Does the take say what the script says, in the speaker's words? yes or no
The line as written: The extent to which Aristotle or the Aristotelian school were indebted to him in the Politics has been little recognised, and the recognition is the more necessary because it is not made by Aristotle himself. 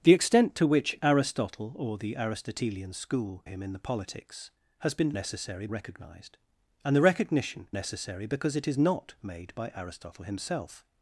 no